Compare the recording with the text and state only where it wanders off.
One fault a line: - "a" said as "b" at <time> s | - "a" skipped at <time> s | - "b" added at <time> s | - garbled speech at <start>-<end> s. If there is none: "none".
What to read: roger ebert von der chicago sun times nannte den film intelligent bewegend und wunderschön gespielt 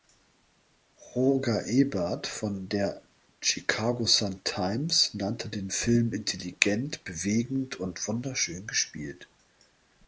none